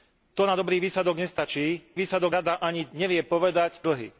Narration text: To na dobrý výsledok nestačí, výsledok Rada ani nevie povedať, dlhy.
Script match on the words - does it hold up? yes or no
yes